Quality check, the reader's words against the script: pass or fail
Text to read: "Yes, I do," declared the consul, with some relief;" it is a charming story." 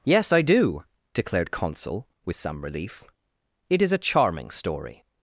fail